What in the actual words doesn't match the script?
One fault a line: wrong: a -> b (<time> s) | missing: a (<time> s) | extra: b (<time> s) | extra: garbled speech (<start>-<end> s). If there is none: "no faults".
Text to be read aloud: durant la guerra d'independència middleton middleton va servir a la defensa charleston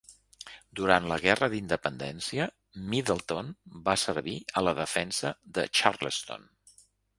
missing: middleton (3.5 s)
extra: de (5.6 s)